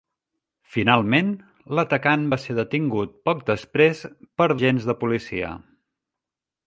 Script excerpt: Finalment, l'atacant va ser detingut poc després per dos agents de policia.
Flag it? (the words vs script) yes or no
yes